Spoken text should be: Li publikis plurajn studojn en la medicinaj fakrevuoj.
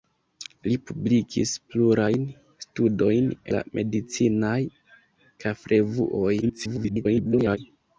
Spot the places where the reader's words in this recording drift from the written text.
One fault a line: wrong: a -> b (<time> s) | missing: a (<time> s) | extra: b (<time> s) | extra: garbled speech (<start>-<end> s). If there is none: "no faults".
missing: en (3.3 s)
extra: garbled speech (6.4-7.6 s)